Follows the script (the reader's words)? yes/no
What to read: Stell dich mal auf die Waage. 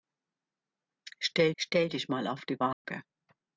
no